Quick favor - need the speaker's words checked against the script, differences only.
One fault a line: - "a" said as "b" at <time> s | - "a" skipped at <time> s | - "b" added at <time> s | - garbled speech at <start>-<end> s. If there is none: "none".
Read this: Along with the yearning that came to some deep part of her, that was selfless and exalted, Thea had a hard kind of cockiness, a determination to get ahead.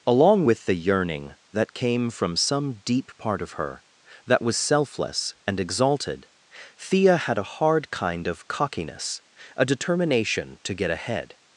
- "to" said as "from" at 2.1 s